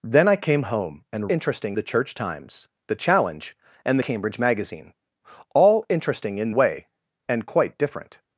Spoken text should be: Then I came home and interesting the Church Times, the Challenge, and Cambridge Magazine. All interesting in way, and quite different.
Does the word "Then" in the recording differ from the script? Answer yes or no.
no